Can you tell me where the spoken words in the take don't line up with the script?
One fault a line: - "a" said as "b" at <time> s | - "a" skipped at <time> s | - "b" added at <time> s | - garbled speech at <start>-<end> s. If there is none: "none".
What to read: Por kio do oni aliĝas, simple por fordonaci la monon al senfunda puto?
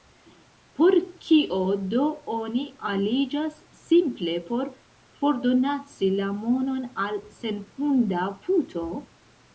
none